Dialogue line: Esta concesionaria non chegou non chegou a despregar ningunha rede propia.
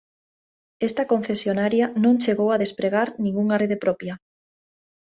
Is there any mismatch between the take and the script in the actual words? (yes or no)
yes